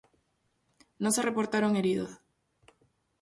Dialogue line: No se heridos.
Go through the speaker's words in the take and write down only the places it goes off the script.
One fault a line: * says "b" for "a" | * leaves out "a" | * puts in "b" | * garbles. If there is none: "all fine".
* puts in "reportaron"